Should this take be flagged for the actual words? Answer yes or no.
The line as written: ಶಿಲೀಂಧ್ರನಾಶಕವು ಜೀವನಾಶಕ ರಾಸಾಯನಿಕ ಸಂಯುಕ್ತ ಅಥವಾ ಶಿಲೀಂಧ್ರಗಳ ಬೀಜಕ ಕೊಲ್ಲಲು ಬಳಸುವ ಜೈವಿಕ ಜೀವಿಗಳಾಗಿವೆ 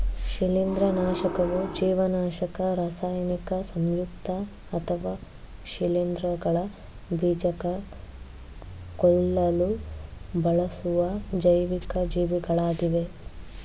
no